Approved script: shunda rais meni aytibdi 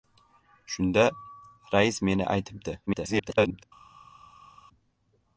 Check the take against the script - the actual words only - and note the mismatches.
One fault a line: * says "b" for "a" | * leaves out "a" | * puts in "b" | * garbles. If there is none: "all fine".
* garbles